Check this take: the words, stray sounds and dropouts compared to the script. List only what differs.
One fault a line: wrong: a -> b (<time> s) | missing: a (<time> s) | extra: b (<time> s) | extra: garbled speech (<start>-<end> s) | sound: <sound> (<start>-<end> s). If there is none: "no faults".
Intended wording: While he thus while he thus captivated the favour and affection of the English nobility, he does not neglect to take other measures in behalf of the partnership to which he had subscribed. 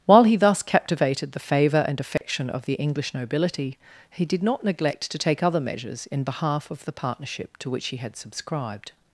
missing: while he thus (0.6 s)
sound: dropout (2.2-2.2 s)
wrong: does -> did (4.3 s)